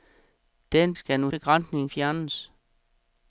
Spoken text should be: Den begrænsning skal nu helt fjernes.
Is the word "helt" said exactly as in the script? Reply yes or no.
no